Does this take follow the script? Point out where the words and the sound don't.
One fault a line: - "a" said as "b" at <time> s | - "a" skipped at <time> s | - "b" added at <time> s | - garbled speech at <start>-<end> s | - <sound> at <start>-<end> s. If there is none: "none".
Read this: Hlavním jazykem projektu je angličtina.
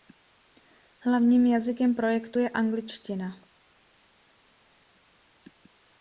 none